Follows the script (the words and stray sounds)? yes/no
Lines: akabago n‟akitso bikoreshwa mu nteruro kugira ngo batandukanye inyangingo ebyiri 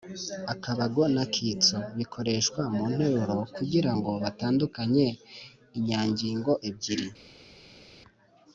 yes